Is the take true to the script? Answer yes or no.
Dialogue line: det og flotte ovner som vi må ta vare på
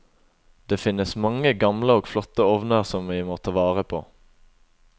no